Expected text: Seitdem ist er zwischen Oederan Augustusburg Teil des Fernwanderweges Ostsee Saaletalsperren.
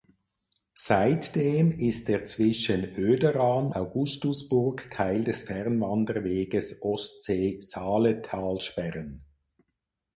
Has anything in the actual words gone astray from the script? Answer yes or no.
no